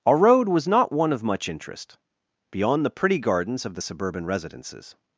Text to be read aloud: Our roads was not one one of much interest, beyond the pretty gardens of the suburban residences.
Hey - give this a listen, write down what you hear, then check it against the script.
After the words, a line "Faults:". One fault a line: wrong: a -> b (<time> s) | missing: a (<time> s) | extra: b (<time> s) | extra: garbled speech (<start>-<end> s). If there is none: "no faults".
Our road was not one of much interest, beyond the pretty gardens of the suburban residences.
Faults:
wrong: roads -> road (0.2 s)
missing: one (1.1 s)